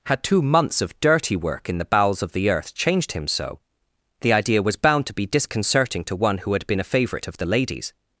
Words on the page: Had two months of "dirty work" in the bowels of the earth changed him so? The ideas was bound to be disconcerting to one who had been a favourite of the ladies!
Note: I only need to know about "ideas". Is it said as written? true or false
false